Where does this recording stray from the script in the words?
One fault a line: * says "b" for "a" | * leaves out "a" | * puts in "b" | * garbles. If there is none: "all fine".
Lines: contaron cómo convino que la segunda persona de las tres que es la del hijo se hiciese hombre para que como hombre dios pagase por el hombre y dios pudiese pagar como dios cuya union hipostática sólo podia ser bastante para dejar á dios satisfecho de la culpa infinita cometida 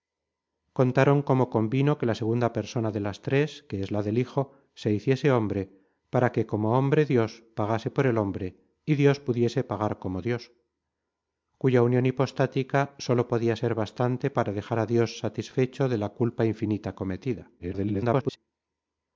* garbles